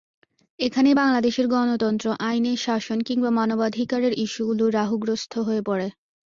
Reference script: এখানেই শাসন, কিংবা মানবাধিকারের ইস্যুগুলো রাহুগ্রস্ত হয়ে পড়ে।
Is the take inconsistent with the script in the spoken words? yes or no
yes